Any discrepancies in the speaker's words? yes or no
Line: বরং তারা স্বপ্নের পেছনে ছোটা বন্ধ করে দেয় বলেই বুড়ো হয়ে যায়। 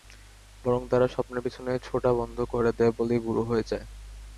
no